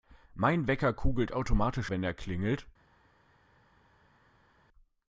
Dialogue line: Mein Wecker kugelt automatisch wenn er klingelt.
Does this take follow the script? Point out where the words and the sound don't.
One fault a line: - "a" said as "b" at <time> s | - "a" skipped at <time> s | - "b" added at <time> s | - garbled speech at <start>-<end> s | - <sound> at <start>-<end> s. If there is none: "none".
none